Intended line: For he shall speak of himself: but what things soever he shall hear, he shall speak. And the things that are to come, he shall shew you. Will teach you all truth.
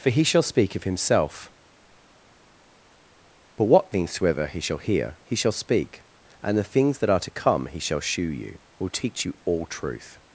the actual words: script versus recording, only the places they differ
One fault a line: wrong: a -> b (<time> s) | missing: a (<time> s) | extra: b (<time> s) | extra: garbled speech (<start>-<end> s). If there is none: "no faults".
no faults